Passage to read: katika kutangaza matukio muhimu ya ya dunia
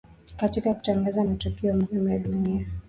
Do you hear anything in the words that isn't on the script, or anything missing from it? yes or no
yes